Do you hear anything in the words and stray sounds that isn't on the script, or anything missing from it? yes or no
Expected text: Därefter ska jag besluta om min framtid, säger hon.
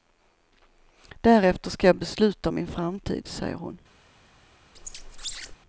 yes